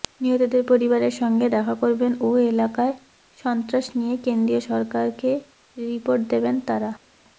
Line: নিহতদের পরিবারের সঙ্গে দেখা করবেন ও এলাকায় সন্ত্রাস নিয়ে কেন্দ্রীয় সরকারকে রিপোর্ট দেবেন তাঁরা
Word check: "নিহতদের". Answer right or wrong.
right